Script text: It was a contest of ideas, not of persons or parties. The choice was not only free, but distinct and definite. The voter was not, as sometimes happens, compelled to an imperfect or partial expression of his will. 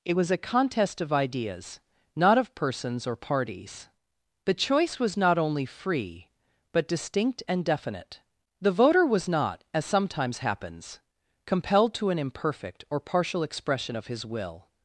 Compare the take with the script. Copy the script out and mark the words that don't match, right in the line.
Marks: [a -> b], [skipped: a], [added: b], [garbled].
It was a contest of ideas, not of persons or parties. The choice was not only free, but distinct and definite. The voter was not, as sometimes happens, compelled to an imperfect or partial expression of his will.